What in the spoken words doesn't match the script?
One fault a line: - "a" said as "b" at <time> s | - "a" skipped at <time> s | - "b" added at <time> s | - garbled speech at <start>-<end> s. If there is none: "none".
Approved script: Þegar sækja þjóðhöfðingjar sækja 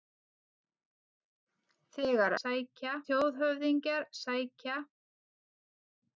none